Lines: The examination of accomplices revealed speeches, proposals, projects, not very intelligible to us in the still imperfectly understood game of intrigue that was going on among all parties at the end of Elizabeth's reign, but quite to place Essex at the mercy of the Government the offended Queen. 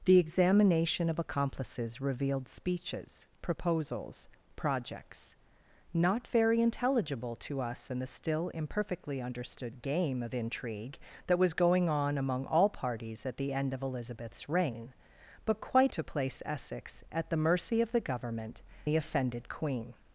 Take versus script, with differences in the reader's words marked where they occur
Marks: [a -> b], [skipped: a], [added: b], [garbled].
The examination of accomplices revealed speeches, proposals, projects, not very intelligible to us in the still imperfectly understood game of intrigue that was going on among all parties at the end of Elizabeth's reign, but quite to place Essex at the mercy of the Government the offended Queen.